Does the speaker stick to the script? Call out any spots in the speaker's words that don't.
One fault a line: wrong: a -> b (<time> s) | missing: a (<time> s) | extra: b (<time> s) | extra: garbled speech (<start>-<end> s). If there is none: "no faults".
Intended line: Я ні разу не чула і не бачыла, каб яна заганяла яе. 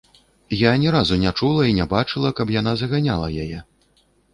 no faults